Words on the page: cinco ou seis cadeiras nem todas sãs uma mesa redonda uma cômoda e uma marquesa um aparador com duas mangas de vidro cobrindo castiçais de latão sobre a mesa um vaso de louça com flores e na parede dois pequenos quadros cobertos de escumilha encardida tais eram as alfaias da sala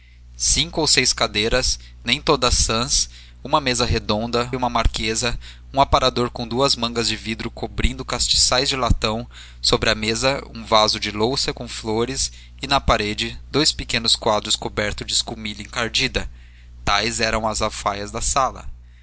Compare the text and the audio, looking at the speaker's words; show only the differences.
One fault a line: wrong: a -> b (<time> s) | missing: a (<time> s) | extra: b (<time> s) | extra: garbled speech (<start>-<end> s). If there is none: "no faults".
missing: uma cômoda (4.5 s)